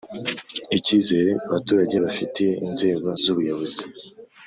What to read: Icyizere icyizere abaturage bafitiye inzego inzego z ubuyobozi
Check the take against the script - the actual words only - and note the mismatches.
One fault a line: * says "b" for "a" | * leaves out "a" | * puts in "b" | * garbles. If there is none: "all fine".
* leaves out "icyizere"
* leaves out "inzego"